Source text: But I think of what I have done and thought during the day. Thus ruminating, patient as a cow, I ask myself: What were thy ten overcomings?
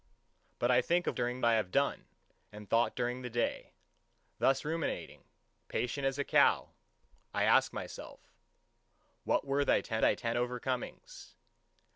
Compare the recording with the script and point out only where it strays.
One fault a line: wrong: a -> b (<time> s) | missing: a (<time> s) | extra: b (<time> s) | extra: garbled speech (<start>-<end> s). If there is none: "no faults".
wrong: what -> during (1.2 s)
extra: thy ten (10.0 s)